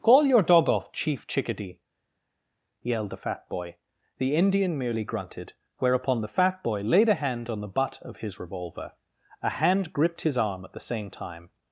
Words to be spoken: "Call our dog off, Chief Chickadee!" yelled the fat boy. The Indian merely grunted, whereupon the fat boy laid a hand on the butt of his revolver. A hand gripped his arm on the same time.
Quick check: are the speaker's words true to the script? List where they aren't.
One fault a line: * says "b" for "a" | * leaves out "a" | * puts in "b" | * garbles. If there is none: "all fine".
* says "your" for "our"
* says "at" for "on"